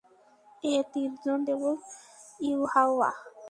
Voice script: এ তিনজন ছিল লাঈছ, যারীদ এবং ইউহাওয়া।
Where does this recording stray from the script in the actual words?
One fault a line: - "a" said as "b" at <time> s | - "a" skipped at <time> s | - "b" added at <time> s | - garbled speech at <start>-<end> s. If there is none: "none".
- "ছিল লাঈছ যারীদ" skipped at 1.4 s